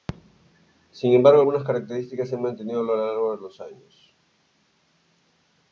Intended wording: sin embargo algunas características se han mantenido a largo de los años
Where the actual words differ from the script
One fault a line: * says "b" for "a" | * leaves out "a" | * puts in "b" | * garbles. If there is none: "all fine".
* puts in "lo"